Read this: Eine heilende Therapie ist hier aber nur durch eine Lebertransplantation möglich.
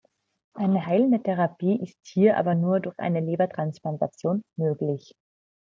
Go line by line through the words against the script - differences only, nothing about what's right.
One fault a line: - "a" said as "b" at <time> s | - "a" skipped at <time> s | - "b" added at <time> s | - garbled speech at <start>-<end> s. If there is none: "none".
none